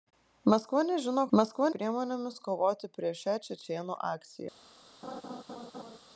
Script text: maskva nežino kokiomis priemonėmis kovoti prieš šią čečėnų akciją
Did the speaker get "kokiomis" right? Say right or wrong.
wrong